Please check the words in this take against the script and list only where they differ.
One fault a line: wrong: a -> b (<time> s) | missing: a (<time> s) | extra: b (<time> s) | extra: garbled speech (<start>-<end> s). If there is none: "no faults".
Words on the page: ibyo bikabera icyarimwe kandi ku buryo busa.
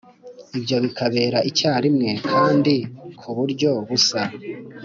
no faults